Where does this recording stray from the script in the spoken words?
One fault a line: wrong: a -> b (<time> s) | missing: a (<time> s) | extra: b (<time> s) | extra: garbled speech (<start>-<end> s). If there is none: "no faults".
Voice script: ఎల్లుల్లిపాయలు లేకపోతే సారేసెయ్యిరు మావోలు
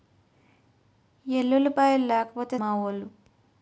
missing: సారేసెయ్యిరు (2.6 s)